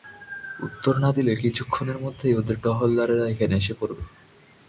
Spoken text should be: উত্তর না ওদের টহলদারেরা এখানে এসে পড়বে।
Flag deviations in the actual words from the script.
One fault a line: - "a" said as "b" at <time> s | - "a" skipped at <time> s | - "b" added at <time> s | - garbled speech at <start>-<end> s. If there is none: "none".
- "দিলে কিছুক্ষণের মধ্যেই" added at 1.1 s